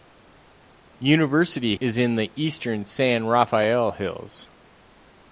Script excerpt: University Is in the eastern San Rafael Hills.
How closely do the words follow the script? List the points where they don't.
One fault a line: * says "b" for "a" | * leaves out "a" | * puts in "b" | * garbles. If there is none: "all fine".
all fine